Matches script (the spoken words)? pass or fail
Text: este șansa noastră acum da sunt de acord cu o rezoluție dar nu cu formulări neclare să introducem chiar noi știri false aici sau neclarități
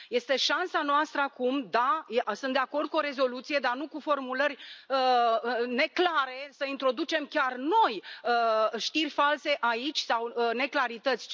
pass